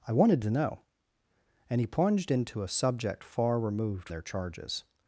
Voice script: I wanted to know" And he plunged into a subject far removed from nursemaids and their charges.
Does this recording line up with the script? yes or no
no